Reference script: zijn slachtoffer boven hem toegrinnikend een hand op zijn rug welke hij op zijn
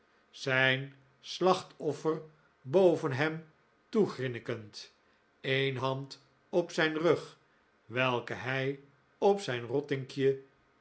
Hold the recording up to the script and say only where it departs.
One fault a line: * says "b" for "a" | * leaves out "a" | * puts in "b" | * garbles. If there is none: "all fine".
all fine